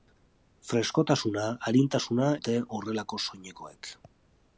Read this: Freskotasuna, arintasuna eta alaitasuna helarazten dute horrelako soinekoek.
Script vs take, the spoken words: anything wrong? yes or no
yes